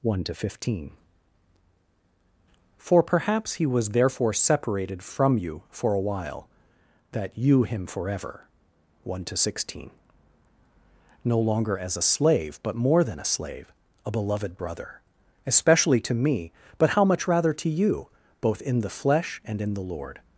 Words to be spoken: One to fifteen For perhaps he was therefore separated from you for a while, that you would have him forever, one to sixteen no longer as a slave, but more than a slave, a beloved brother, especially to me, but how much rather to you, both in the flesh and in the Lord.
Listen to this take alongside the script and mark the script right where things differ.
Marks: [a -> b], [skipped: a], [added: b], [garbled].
One to fifteen For perhaps he was therefore separated from you for a while, that you [skipped: would have] him forever, one to sixteen no longer as a slave, but more than a slave, a beloved brother, especially to me, but how much rather to you, both in the flesh and in the Lord.